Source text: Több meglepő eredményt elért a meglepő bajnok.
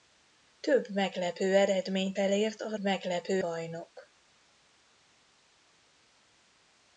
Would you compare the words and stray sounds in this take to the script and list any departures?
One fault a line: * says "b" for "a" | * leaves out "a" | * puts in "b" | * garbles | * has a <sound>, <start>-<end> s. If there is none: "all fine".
all fine